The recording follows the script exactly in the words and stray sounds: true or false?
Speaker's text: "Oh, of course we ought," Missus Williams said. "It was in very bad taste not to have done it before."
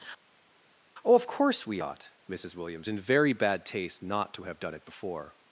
false